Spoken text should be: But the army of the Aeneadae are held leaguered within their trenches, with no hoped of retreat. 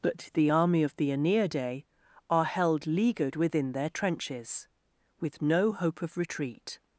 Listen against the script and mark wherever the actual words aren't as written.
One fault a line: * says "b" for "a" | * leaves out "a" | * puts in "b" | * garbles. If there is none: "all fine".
* says "hope" for "hoped"